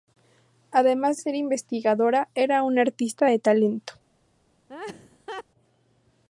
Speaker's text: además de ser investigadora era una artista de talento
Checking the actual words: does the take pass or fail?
fail